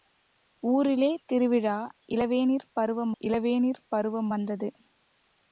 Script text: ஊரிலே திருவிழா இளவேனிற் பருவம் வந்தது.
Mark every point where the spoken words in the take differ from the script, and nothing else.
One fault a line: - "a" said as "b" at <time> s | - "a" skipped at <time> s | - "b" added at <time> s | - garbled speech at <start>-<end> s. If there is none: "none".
- "இளவேனிற் பருவம்" added at 3.2 s